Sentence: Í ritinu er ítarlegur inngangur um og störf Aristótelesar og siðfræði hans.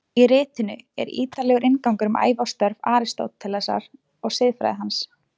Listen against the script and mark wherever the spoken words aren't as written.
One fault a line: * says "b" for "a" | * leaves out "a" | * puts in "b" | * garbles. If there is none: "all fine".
* puts in "ævi"